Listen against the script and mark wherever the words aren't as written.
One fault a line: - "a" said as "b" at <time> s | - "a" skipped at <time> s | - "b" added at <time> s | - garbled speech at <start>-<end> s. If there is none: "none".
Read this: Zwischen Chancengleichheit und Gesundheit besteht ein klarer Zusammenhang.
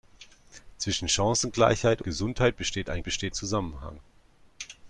- "und" skipped at 2.0 s
- "klarer" said as "besteht" at 3.0 s